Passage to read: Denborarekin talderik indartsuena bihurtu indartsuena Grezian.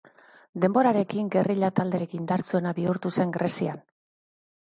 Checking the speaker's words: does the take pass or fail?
fail